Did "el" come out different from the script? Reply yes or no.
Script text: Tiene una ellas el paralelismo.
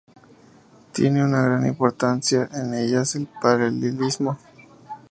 no